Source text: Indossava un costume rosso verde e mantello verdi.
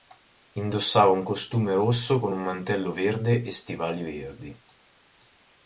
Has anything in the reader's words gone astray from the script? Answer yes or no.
yes